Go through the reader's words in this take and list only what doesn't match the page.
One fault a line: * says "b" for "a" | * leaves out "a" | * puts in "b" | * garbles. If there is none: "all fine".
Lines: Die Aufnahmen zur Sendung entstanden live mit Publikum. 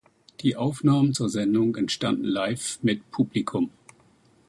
all fine